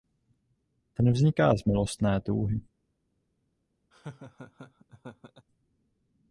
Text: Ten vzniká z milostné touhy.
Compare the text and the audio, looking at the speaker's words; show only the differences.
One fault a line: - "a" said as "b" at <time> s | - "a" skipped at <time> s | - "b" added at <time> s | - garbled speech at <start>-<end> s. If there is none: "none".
none